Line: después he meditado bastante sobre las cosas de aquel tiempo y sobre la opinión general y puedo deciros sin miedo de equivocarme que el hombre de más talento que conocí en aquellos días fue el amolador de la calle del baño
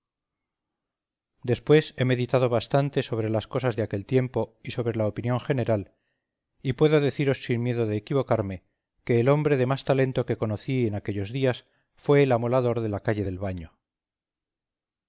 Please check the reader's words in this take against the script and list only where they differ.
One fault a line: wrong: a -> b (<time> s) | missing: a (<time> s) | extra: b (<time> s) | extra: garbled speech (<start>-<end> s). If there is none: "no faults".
no faults